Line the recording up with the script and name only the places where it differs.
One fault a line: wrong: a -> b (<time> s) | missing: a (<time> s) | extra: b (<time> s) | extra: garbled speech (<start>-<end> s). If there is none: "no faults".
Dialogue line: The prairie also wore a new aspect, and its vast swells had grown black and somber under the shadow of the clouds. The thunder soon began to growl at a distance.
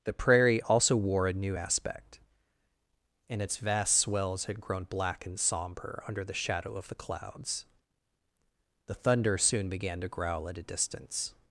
no faults